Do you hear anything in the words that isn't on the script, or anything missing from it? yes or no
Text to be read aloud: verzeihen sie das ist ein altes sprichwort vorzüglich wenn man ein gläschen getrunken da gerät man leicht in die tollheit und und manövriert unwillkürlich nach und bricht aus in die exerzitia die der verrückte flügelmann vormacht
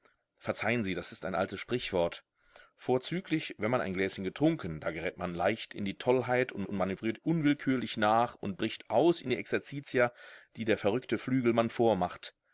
no